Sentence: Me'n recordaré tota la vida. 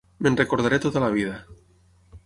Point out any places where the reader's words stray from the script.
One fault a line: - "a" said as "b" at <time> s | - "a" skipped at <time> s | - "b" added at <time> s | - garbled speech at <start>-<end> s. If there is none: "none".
none